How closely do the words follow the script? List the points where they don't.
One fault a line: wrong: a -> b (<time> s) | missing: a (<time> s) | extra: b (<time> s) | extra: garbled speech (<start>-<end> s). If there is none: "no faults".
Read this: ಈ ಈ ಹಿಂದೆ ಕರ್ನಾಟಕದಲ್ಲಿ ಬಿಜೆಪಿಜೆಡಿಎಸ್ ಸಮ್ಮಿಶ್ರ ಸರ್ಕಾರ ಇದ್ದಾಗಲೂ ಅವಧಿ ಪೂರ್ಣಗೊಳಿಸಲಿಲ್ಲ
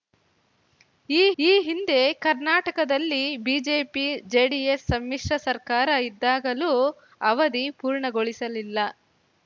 no faults